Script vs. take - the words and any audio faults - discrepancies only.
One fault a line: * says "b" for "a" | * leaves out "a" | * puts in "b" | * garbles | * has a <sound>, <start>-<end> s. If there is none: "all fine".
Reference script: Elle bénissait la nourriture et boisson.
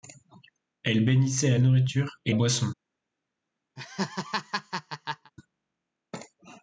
* has a laugh, 3.8-5.3 s